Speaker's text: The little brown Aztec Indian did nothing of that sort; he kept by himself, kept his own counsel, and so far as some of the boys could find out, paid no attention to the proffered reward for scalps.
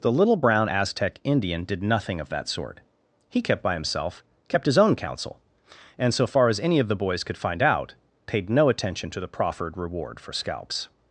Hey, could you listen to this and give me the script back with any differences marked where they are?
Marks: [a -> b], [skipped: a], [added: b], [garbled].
The little brown Aztec Indian did nothing of that sort; he kept by himself, kept his own counsel, and so far as [some -> any] of the boys could find out, paid no attention to the proffered reward for scalps.